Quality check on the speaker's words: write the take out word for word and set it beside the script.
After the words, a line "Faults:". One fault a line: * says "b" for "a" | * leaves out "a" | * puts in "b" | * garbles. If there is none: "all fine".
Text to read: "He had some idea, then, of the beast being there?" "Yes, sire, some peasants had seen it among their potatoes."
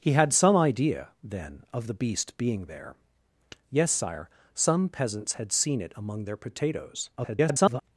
"He had some idea, then, of the beast being there?" "Yes, sire, some peasants had seen it among their potatoes." [garbled]
Faults:
* garbles